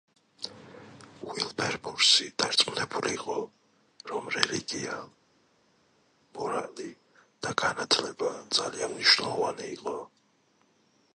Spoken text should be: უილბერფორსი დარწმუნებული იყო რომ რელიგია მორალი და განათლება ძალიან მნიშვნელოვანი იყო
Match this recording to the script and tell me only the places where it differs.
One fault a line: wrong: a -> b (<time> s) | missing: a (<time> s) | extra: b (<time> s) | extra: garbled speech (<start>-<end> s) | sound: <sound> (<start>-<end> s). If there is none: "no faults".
no faults